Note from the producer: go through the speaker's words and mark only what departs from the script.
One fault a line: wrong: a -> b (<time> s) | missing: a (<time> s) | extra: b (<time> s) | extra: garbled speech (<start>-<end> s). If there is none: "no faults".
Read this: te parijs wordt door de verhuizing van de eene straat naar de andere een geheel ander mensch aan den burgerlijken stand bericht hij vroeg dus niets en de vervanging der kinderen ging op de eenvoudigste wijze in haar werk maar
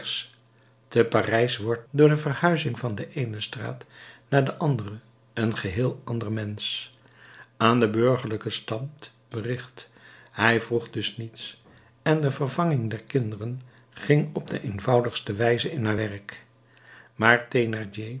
no faults